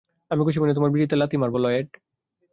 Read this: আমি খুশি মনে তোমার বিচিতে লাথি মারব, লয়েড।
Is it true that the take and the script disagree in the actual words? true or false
false